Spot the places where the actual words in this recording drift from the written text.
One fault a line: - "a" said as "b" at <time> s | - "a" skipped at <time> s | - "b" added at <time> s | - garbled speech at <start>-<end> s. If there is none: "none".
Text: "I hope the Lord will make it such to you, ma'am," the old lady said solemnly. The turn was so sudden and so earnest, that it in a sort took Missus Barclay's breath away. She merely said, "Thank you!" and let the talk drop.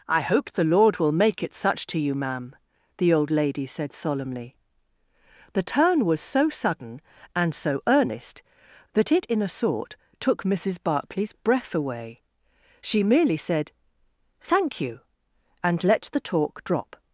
none